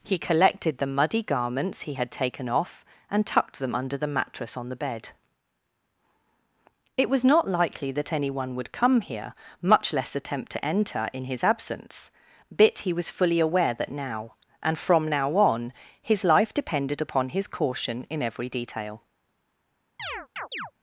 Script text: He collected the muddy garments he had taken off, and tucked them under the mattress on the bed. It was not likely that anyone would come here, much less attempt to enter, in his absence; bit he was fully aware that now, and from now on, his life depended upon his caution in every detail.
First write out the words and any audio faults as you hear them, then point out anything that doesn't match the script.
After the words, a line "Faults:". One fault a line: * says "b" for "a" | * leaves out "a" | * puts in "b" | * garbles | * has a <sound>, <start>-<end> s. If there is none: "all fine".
He collected the muddy garments he had taken off, and tucked them under the mattress on the bed. It was not likely that anyone would come here, much less attempt to enter, in his absence; bit he was fully aware that now, and from now on, his life depended upon his caution in every detail.
Faults:
* has a chirp, 20.0-20.7 s